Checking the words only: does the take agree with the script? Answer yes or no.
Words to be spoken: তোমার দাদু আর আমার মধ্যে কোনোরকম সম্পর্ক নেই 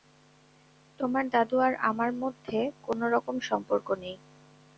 yes